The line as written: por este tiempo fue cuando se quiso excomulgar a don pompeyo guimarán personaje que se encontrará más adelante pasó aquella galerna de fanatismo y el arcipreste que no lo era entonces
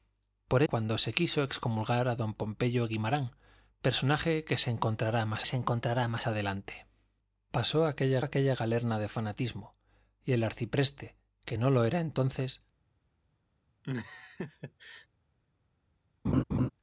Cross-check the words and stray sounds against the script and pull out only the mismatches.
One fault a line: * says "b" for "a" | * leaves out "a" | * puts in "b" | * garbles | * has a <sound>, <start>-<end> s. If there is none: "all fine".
* leaves out "este tiempo fue"
* puts in "se encontrará más"
* puts in "aquella"
* has a laugh, 13.8-15.1 s
* has a laugh, 16.2-16.7 s